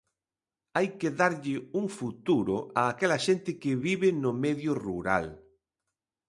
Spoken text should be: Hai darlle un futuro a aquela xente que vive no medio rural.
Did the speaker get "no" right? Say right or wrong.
right